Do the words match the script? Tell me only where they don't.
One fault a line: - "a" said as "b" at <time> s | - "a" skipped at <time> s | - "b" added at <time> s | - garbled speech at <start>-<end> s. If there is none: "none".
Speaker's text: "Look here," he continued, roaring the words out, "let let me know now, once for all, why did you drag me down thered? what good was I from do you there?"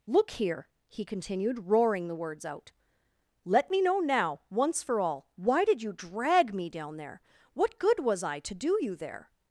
- "let" skipped at 3.7 s
- "thered" said as "there" at 7.0 s
- "from" said as "to" at 8.4 s